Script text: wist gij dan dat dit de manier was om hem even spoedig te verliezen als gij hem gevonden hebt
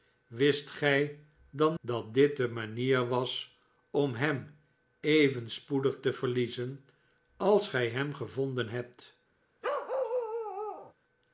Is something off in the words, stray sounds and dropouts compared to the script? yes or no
yes